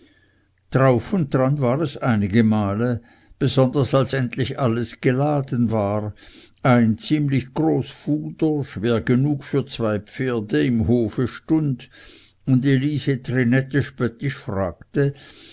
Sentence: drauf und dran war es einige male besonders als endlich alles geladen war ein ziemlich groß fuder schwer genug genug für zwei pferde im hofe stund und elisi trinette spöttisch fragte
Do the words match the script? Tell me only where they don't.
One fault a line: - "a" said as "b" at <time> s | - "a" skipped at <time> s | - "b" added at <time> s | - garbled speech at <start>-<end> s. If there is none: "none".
- "genug" skipped at 9.4 s